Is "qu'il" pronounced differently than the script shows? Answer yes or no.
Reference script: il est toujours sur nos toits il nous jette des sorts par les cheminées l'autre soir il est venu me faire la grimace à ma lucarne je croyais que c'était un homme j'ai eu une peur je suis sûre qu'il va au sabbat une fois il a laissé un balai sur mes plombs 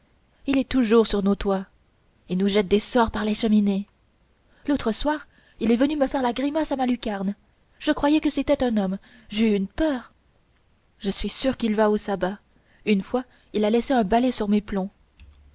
no